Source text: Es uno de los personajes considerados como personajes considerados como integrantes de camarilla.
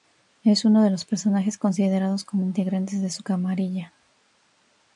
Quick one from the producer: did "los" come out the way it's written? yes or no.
yes